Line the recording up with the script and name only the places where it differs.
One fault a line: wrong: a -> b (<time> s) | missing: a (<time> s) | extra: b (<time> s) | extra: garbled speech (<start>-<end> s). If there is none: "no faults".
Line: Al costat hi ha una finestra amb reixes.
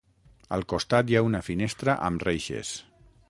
no faults